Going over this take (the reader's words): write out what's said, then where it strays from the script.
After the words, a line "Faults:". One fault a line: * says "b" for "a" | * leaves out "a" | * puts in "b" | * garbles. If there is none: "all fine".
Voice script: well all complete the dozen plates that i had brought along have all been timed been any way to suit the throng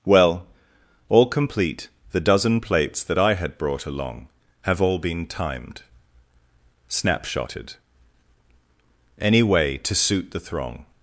well all complete the dozen plates that i had brought along have all been timed snapshotted any way to suit the throng
Faults:
* says "snapshotted" for "been"